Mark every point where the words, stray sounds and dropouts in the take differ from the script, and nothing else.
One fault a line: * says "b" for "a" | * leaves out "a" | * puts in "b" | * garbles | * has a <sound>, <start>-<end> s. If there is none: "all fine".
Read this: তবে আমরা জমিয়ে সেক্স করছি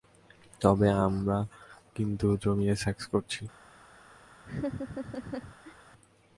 * puts in "কিন্তু"
* has a laugh, 4.4-5.8 s